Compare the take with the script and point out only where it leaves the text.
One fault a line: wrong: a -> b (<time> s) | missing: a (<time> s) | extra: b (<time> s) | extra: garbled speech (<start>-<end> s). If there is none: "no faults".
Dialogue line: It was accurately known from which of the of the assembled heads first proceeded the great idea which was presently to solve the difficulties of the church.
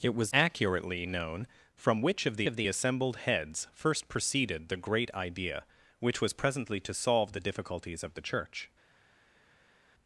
no faults